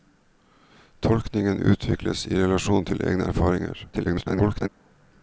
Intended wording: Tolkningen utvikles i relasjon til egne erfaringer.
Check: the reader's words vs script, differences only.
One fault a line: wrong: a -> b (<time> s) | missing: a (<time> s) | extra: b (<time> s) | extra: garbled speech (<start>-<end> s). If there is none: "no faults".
extra: garbled speech (3.9-4.7 s)